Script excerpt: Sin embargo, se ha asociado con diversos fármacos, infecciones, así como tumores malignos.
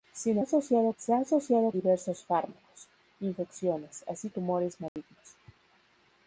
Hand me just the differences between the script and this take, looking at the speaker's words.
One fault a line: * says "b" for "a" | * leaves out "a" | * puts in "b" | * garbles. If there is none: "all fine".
* says "asociado" for "embargo"
* leaves out "con"
* leaves out "como"